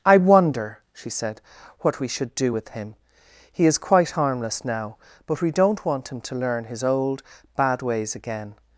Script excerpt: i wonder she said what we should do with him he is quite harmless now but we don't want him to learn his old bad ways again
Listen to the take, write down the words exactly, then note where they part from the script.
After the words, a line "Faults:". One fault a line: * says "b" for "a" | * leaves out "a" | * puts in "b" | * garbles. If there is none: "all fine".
i wonder she said what we should do with him he is quite harmless now but we don't want him to learn his old bad ways again
Faults:
all fine